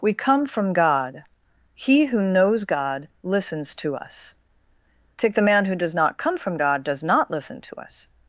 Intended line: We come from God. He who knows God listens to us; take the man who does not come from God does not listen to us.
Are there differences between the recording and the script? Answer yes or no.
no